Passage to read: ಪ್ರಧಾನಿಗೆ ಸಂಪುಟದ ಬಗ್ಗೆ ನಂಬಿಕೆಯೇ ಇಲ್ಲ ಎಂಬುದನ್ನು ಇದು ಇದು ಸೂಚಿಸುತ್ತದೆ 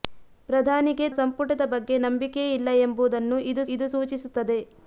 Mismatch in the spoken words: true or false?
false